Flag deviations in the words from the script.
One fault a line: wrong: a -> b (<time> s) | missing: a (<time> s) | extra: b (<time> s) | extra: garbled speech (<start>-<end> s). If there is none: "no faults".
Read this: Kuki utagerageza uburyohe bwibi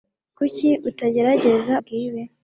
missing: uburyohe (1.7 s)